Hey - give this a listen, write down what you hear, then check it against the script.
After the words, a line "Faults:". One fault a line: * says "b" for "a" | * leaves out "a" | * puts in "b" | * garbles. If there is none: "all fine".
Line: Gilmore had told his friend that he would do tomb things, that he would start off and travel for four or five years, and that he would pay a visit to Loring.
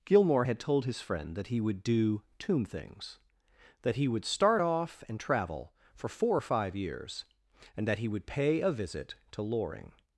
Gilmore had told his friend that he would do tomb things, that he would start off and travel for four or five years, and that he would pay a visit to Loring.
Faults:
all fine